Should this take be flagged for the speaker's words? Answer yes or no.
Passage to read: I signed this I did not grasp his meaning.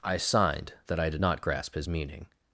yes